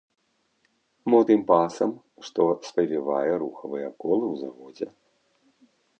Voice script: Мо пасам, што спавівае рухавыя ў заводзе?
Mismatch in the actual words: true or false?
true